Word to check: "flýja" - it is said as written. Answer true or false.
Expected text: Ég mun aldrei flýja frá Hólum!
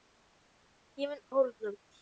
false